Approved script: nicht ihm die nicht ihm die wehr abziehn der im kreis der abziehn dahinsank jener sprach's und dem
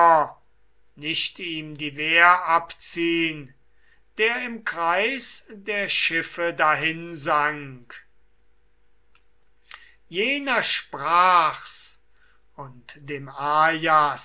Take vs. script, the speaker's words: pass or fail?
fail